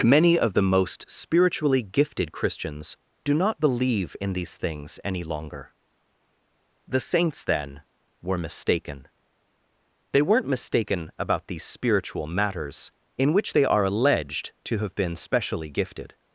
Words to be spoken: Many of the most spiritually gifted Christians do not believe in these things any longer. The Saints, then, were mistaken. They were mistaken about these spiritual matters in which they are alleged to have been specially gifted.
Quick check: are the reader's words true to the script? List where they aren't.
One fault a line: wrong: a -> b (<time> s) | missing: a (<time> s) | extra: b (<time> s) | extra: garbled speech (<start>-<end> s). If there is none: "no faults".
wrong: were -> weren't (10.2 s)